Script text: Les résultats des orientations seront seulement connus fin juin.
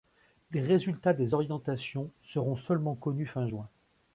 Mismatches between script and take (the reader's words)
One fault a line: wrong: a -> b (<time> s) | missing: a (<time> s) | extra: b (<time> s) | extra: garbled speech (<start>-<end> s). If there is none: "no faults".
no faults